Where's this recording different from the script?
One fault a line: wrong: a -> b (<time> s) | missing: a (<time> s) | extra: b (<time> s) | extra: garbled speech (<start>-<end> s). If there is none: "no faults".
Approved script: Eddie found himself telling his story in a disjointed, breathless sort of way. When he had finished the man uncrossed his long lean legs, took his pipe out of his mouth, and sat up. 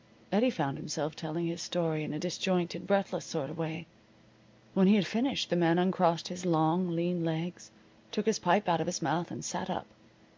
no faults